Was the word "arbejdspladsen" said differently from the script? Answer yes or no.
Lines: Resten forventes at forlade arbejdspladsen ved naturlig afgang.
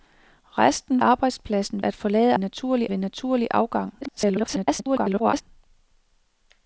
yes